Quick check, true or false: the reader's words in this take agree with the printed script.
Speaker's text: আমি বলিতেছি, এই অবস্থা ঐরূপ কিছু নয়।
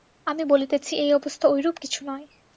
true